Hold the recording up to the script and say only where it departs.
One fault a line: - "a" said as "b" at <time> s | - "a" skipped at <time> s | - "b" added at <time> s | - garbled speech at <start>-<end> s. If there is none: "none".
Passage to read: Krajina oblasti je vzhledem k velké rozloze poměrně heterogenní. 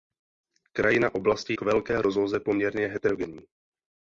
- "je vzhledem" skipped at 1.5 s